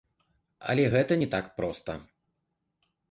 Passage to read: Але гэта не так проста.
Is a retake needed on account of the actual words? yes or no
no